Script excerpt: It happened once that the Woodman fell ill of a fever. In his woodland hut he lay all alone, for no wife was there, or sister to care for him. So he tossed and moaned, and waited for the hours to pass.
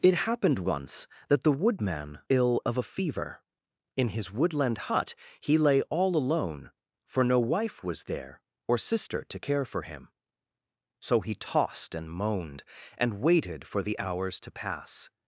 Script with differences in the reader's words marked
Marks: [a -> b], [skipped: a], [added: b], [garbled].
It happened once that the Woodman [skipped: fell] ill of a fever. In his woodland hut he lay all alone, for no wife was there, or sister to care for him. So he tossed and moaned, and waited for the hours to pass.